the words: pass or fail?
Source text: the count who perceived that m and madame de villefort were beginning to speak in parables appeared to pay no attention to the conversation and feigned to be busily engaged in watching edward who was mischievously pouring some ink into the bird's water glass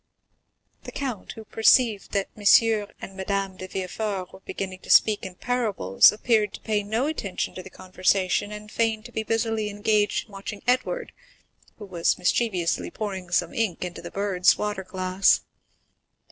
pass